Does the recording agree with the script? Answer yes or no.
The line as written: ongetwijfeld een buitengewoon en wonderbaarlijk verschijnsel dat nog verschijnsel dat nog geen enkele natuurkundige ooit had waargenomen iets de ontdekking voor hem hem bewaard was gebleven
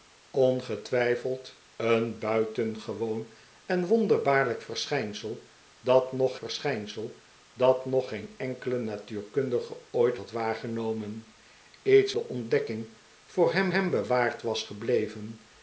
yes